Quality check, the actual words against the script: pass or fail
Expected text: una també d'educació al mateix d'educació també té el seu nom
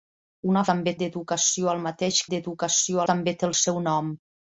pass